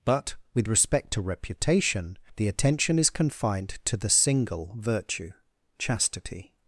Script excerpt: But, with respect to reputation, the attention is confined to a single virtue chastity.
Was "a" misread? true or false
true